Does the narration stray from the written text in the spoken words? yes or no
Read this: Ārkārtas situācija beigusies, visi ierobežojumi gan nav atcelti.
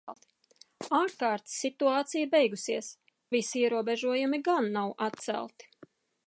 no